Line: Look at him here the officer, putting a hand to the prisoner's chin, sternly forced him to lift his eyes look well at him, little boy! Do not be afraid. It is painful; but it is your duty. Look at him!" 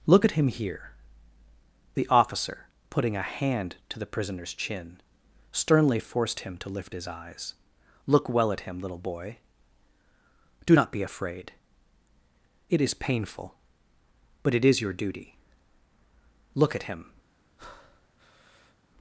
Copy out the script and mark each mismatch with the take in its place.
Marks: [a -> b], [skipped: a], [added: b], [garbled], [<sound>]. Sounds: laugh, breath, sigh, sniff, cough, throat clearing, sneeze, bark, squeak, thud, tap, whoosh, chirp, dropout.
Look at him here the officer, putting a hand to the prisoner's chin, sternly forced him to lift his eyes look well at him, little boy! Do not be afraid. It is painful; but it is your duty. Look at him!" [breath]